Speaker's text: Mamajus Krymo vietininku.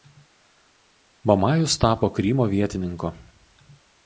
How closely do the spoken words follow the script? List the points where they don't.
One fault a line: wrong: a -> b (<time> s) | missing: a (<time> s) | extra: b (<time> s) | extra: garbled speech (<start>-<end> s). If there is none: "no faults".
extra: tapo (1.8 s)